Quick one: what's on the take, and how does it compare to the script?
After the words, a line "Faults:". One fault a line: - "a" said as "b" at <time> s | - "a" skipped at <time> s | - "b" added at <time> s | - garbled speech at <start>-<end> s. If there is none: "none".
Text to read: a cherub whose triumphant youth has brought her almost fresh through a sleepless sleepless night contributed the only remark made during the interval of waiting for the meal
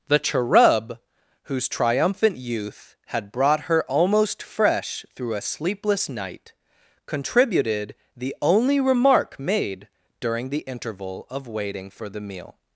the cherub whose triumphant youth had brought her almost fresh through a sleepless night contributed the only remark made during the interval of waiting for the meal
Faults:
- "a" said as "the" at 0.1 s
- "has" said as "had" at 3.1 s
- "sleepless" skipped at 6.1 s